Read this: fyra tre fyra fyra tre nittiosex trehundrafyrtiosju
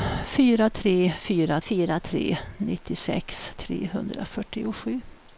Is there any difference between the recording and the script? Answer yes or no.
no